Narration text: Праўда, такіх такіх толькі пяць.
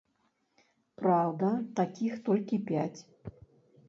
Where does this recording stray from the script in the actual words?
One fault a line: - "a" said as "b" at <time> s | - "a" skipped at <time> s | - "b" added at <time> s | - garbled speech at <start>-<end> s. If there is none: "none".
- "такіх" skipped at 2.1 s